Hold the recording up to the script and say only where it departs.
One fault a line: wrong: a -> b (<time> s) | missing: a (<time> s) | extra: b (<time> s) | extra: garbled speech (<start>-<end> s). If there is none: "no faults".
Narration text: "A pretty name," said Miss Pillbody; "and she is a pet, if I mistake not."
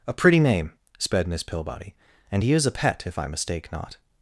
wrong: said -> sped (1.0 s)
wrong: she -> he (2.4 s)